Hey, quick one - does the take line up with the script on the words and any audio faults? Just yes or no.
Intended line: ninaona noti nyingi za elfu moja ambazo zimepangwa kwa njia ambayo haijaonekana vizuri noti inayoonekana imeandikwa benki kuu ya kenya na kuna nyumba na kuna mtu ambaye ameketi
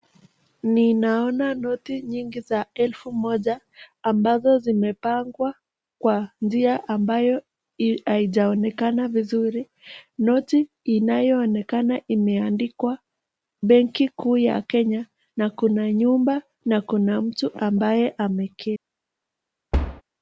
no